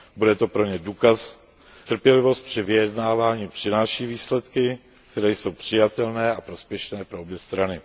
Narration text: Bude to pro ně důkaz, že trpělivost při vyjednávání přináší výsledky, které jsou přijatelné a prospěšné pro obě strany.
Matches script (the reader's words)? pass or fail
fail